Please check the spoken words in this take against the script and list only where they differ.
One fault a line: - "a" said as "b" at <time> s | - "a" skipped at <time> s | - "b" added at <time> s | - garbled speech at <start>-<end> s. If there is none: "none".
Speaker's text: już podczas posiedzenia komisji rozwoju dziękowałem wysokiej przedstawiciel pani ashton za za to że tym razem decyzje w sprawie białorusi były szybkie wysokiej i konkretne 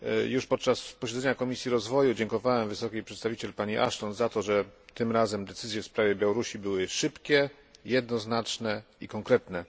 - "za" skipped at 4.3 s
- "wysokiej" said as "jednoznaczne" at 7.8 s